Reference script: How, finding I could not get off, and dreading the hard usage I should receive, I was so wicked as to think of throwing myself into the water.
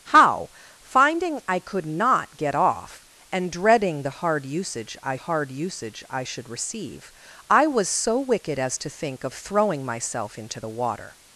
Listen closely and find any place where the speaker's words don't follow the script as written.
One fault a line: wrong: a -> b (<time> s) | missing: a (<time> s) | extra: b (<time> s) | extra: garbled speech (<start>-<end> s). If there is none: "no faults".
extra: hard usage I (5.1 s)